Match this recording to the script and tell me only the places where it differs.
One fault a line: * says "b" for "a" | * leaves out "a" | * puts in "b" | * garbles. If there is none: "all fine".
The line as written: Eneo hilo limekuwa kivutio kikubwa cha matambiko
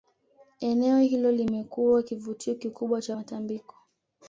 all fine